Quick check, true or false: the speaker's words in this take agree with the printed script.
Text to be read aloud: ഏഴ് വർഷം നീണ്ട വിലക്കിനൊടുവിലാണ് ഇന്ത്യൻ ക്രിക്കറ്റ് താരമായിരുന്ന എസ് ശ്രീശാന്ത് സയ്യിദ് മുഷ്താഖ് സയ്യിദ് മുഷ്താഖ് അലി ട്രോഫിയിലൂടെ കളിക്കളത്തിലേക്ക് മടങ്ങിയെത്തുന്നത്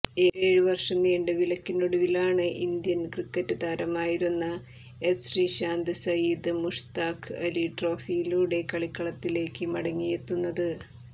false